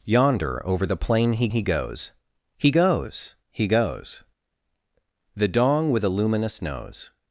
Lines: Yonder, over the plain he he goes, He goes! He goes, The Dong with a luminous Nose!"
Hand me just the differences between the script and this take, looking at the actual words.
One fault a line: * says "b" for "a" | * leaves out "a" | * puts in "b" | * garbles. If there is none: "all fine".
all fine